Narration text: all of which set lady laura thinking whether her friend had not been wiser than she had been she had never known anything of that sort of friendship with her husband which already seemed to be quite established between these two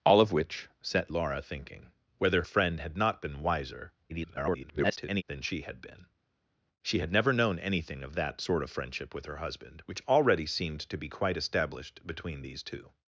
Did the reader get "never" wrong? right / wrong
right